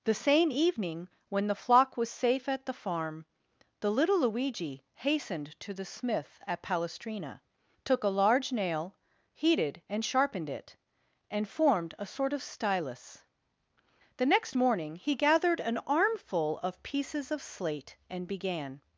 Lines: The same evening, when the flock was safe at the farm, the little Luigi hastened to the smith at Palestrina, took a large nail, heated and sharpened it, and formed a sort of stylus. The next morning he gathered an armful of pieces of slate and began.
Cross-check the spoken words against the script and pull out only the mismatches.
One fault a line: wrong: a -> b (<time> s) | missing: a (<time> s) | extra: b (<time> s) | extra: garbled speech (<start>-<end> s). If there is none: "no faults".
no faults